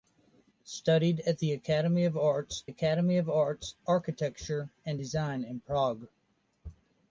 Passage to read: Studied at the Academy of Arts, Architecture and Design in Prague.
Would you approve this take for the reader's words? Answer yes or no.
no